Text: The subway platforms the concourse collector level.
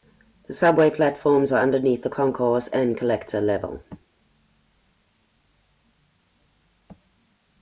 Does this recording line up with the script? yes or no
no